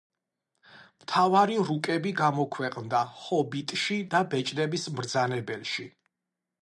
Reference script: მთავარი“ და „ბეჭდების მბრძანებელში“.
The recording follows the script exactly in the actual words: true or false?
false